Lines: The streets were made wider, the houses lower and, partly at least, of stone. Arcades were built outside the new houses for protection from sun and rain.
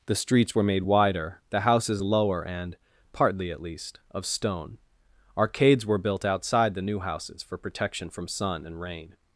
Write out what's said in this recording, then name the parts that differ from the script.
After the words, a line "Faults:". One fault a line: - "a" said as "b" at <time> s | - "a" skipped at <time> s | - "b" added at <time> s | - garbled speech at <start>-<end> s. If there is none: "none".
The streets were made wider, the houses lower and, partly at least, of stone. Arcades were built outside the new houses for protection from sun and rain.
Faults:
none